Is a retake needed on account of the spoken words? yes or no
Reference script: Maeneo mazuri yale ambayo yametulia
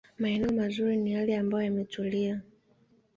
yes